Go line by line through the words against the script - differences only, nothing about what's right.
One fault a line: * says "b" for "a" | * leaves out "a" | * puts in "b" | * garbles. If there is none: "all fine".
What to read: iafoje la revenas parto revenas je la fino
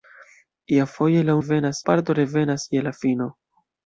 all fine